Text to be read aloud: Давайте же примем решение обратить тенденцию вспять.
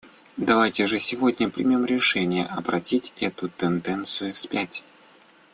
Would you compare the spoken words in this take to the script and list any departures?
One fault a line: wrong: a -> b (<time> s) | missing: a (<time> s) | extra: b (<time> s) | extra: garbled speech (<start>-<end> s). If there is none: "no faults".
extra: сегодня (1.0 s)
extra: эту (3.2 s)